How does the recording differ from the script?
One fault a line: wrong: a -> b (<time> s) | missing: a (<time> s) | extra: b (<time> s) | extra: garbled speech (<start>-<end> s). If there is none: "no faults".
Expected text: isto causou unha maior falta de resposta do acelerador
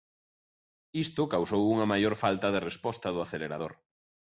no faults